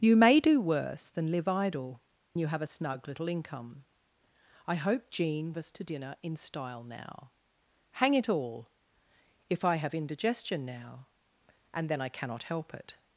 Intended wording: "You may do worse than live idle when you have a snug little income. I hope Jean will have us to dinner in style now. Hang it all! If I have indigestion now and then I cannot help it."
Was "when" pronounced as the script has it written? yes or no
no